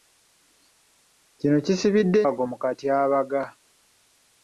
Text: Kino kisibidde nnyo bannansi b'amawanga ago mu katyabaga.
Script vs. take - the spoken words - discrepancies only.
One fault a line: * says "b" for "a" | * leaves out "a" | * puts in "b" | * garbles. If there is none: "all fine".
* leaves out "nnyo bannansi b'amawanga"